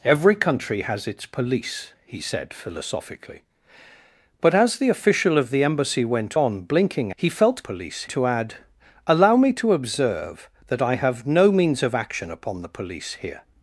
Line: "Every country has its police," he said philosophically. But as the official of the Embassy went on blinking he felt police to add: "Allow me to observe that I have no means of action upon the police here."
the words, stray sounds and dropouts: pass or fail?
pass